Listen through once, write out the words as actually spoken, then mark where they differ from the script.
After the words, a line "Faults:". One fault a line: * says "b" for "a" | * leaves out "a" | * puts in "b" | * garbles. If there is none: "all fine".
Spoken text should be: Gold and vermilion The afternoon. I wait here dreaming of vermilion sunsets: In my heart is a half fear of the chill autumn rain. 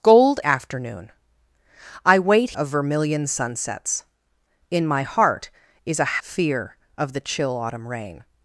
Gold afternoon. I wait of vermilion sunsets: In my heart is a fear of the chill autumn rain.
Faults:
* leaves out "and vermilion The"
* leaves out "here dreaming"
* leaves out "half"